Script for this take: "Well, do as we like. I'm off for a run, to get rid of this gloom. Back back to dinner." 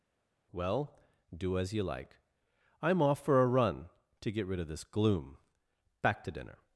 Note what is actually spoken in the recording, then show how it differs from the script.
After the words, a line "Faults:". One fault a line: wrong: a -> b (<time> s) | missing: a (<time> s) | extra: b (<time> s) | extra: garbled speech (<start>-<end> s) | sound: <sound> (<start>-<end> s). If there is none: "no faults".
"Well, do as you like. I'm off for a run, to get rid of this gloom. Back to dinner."
Faults:
wrong: we -> you (1.7 s)
missing: back (6.2 s)